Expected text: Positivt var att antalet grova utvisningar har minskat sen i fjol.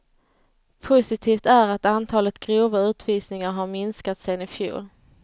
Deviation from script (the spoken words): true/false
true